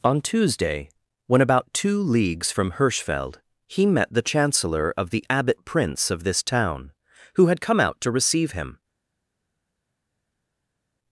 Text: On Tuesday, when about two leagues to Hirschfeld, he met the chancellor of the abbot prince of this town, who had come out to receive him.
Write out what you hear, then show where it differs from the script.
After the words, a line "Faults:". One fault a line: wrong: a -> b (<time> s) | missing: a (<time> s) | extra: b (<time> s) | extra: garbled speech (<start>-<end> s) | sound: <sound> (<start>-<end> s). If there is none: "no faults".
On Tuesday, when about two leagues from Hirschfeld, he met the chancellor of the abbot prince of this town, who had come out to receive him.
Faults:
wrong: to -> from (2.5 s)